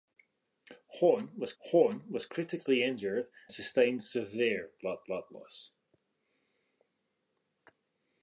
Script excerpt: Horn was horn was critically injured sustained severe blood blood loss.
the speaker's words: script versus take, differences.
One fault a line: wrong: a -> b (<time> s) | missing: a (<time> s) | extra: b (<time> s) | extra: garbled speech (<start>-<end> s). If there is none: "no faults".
no faults